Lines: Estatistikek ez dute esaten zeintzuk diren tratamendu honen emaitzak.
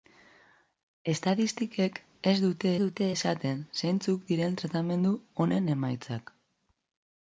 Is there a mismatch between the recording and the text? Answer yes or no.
yes